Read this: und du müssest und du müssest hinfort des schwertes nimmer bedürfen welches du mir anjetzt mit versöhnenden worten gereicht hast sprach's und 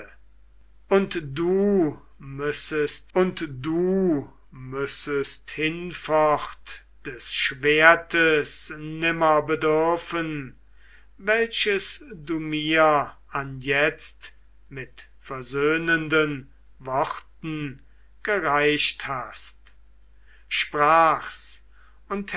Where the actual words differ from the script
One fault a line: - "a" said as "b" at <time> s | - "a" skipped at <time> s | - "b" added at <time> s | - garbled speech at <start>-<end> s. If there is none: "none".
none